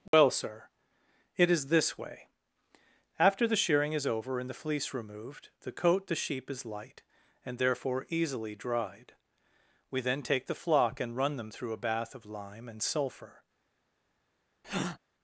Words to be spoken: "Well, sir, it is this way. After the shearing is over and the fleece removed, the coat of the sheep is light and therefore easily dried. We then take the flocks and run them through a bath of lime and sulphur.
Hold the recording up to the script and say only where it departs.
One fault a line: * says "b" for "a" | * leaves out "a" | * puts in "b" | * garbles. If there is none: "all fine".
* leaves out "of"
* says "flock" for "flocks"